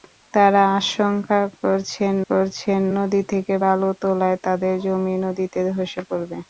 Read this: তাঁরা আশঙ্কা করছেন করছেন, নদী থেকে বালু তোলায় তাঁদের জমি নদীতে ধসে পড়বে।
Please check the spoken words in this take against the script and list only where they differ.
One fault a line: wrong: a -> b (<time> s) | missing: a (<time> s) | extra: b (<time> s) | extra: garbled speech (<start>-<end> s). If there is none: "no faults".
no faults